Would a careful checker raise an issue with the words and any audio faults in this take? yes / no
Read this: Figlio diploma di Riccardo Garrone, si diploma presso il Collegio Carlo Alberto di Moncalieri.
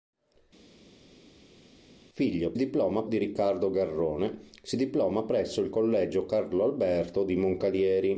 no